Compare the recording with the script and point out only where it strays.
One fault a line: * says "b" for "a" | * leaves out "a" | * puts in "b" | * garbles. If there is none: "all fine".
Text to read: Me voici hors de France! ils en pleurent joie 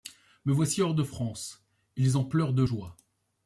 * puts in "de"